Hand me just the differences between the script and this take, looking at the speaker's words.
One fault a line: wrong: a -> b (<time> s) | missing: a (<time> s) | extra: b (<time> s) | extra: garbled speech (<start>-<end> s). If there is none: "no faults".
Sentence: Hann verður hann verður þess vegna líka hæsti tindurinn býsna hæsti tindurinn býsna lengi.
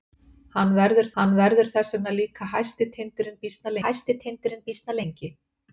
no faults